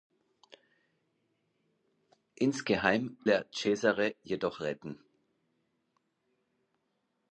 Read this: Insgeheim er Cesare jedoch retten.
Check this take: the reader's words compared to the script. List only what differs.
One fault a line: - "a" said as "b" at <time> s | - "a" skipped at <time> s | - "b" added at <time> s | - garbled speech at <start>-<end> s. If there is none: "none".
none